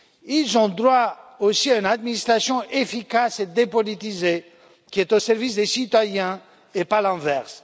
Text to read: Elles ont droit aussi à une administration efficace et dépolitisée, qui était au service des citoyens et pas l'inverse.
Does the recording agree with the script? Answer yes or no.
no